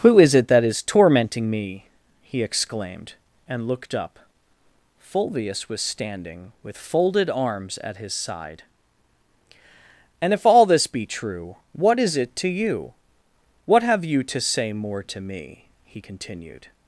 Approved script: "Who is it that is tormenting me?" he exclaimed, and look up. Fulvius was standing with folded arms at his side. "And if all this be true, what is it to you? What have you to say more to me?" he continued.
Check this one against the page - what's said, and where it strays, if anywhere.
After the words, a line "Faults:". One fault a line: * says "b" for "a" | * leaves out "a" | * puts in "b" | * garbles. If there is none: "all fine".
"Who is it that is tormenting me?" he exclaimed, and looked up. Fulvius was standing with folded arms at his side. "And if all this be true, what is it to you? What have you to say more to me?" he continued.
Faults:
* says "looked" for "look"